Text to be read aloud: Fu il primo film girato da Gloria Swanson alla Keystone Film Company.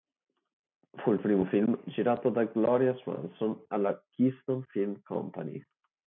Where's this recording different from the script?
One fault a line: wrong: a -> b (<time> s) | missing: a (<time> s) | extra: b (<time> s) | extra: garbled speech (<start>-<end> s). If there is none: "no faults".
no faults